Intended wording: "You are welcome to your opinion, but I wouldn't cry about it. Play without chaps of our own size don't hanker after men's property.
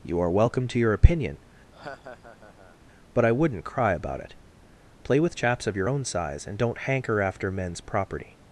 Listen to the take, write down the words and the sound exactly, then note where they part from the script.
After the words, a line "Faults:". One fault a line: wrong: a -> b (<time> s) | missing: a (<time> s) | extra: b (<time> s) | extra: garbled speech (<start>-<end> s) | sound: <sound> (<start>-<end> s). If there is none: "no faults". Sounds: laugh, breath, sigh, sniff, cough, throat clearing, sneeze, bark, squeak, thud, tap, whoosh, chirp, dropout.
"You are welcome to your opinion, but I wouldn't cry about it. Play with chaps of your own size and don't hanker after men's property.
Faults:
sound: laugh (1.7-2.8 s)
wrong: without -> with (5.2 s)
wrong: our -> your (5.8 s)
extra: and (6.4 s)